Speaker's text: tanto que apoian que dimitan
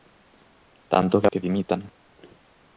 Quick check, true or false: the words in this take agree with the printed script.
false